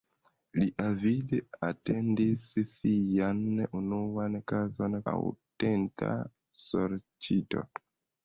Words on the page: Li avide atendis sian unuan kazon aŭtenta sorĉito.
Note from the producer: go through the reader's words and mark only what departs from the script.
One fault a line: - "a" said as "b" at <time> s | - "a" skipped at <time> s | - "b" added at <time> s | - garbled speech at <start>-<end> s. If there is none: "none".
none